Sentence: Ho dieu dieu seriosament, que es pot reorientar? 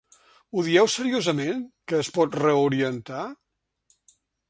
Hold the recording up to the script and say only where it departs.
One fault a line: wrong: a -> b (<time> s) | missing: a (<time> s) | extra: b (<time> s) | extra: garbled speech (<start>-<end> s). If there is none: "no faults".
missing: dieu (0.9 s)